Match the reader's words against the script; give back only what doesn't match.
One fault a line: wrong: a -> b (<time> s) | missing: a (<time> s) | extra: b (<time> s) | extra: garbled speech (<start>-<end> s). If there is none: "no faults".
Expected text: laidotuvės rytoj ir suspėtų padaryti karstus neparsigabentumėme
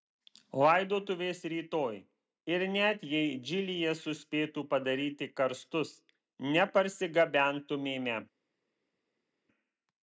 extra: net jei džilyje (2.8 s)